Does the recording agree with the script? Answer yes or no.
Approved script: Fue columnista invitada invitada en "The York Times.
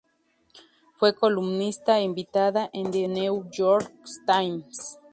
no